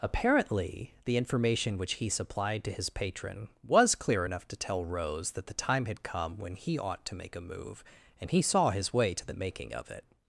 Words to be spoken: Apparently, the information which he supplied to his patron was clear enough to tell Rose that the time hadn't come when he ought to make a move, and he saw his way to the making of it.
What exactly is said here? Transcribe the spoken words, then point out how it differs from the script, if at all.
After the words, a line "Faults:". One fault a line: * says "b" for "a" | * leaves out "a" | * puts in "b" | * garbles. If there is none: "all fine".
Apparently, the information which he supplied to his patron was clear enough to tell Rose that the time had come when he ought to make a move, and he saw his way to the making of it.
Faults:
* says "had" for "hadn't"